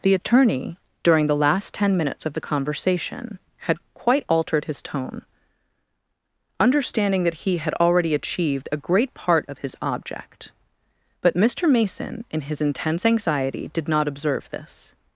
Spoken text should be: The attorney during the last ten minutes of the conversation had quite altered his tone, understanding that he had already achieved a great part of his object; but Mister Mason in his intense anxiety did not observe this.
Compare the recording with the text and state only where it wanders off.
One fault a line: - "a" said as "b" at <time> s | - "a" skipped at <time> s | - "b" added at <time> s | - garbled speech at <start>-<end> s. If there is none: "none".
none